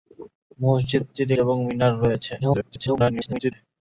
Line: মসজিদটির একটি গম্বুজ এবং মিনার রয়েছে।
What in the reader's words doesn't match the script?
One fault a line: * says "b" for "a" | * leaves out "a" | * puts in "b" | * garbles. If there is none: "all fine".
* leaves out "একটি গম্বুজ"
* garbles